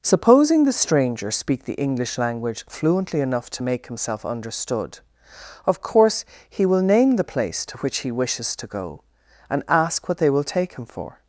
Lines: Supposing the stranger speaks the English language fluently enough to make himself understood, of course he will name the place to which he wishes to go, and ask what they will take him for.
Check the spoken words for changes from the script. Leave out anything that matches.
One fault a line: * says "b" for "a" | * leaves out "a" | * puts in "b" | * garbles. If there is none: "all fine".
* says "speak" for "speaks"